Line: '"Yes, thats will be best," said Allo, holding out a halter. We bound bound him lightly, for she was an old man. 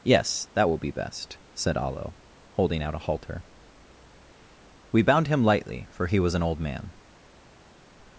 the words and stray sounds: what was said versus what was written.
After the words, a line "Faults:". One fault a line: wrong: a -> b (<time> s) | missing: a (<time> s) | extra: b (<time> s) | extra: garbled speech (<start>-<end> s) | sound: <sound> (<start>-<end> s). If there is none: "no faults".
'"Yes, that will be best," said Allo, holding out a halter. We bound him lightly, for he was an old man.
Faults:
wrong: thats -> that (0.6 s)
missing: bound (5.3 s)
wrong: she -> he (6.1 s)